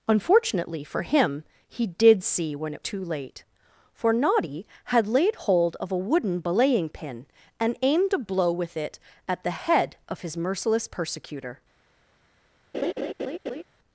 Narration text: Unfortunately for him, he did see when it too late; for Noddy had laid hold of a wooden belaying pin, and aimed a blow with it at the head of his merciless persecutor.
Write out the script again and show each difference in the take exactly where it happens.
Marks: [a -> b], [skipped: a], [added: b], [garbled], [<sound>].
Unfortunately for him, he did see when it too late; for Noddy had laid hold of a wooden belaying pin, and aimed a blow with it at the head of his merciless persecutor. [laugh]